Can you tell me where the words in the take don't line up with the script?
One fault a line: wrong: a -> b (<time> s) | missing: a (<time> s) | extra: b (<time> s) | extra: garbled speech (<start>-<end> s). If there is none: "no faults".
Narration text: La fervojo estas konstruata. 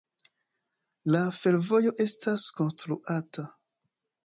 no faults